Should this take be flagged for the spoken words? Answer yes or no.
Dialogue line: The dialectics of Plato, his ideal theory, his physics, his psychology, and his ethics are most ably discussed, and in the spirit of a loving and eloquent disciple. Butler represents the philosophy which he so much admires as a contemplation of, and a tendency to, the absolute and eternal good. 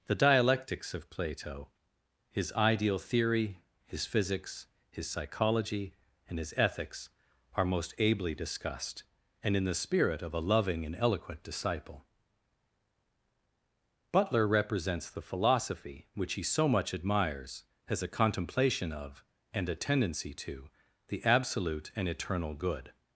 no